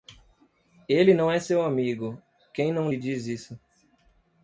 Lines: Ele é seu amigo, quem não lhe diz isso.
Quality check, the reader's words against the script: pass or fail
fail